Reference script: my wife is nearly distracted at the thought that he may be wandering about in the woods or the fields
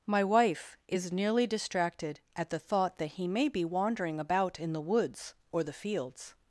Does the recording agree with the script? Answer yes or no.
yes